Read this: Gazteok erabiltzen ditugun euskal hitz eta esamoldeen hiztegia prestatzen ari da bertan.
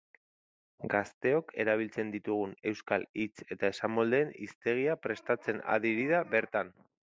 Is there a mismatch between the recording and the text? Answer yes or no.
yes